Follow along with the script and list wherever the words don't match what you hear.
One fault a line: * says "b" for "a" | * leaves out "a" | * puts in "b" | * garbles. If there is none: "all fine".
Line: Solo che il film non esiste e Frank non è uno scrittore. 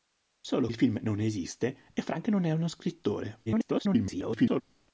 * leaves out "che"
* garbles